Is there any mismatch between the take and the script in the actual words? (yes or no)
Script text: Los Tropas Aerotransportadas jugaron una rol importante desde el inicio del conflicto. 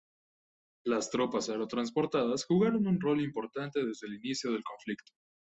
yes